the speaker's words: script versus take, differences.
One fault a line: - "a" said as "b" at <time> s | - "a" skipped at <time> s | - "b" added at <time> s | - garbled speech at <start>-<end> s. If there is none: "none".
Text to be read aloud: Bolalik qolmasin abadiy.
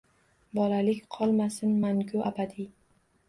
- "mangu" added at 1.8 s